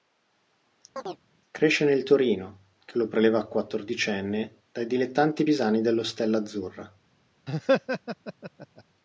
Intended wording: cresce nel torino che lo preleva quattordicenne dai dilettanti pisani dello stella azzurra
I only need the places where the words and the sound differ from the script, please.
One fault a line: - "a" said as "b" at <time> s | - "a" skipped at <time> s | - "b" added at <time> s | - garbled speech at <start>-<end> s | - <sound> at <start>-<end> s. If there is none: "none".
- chirp at 1.0-1.2 s
- laugh at 7.5-8.8 s